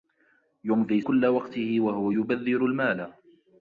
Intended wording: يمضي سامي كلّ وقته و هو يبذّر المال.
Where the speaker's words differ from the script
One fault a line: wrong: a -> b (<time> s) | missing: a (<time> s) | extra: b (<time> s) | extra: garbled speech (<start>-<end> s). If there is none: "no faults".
missing: سامي (1.0 s)